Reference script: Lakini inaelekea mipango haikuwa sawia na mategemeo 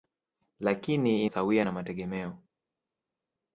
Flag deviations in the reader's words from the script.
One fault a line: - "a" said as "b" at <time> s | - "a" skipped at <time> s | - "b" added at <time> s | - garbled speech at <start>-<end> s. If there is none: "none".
- "inaelekea mipango haikuwa" skipped at 1.2 s